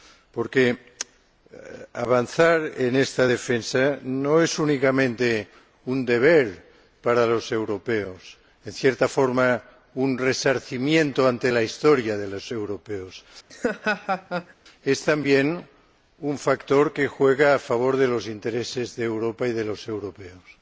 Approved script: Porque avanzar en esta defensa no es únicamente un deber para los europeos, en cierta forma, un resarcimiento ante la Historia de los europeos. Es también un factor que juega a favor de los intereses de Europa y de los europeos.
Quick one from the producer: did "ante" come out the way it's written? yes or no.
yes